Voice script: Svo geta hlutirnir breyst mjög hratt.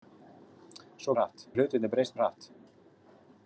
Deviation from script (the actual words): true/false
true